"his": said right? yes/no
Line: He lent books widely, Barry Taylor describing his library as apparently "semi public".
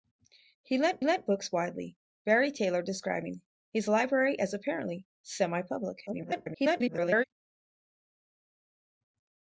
yes